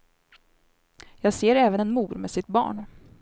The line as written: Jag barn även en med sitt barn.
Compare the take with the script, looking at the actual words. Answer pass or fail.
fail